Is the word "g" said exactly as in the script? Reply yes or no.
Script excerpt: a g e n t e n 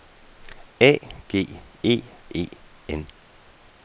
yes